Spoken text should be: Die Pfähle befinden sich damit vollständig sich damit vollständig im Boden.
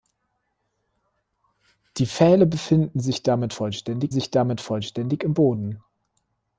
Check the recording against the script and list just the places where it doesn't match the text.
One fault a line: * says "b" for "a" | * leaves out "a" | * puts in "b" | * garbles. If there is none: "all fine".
all fine